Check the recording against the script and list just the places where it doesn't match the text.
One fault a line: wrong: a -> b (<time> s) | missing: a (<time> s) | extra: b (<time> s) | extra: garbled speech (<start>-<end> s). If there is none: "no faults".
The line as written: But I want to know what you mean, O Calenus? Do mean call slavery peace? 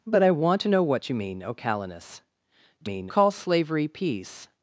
no faults